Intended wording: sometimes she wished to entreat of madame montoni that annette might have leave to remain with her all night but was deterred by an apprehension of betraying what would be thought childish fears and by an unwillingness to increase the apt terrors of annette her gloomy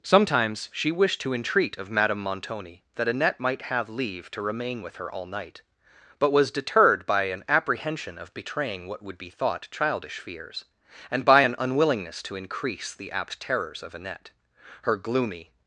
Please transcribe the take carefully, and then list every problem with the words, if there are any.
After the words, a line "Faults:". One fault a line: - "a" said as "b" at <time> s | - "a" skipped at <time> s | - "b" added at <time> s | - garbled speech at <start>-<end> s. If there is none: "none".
sometimes she wished to entreat of madame montoni that annette might have leave to remain with her all night but was deterred by an apprehension of betraying what would be thought childish fears and by an unwillingness to increase the apt terrors of annette her gloomy
Faults:
none